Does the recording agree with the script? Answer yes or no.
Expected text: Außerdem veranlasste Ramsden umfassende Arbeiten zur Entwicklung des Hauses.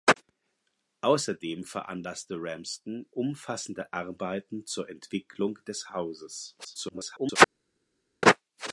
no